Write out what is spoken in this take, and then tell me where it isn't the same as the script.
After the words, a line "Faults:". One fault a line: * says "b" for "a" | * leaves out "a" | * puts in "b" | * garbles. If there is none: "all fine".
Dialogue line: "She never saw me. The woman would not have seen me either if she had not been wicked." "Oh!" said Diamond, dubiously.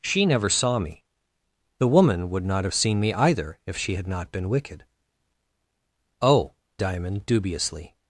"She never saw me. The woman would not have seen me either if she had not been wicked." "Oh!" Diamond, dubiously.
Faults:
* leaves out "said"